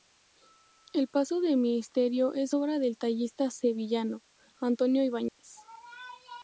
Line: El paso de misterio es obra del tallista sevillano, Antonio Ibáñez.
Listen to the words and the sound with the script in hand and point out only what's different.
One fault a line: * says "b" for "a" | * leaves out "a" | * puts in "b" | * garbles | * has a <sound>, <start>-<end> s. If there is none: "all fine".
* has a dropout, 5.3-5.4 s